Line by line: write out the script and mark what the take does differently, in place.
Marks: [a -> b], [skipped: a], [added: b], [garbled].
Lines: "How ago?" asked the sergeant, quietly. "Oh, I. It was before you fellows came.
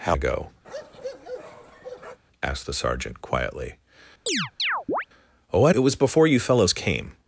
"How ago?" asked the sergeant, quietly. "Oh, I. It was before you fellows came.